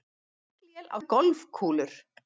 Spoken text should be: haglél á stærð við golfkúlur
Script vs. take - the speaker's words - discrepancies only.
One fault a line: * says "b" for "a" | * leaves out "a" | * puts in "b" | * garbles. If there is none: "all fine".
* leaves out "stærð"